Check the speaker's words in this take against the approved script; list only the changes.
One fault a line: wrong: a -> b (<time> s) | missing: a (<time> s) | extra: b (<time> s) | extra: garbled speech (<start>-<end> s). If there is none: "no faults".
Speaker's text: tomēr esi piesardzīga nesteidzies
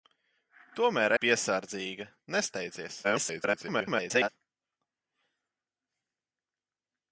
missing: esi (1.1 s)
extra: garbled speech (3.0-4.3 s)